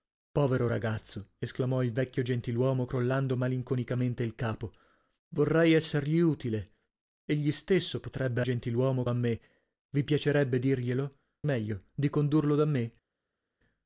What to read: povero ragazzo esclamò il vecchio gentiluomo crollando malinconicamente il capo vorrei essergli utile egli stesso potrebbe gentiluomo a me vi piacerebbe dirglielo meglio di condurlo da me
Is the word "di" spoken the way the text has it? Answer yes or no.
yes